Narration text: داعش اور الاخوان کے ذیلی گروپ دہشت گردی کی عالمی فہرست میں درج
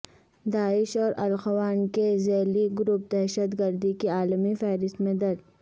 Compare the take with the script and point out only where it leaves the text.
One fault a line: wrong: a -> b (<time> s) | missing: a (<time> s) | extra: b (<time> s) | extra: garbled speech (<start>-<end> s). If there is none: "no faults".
no faults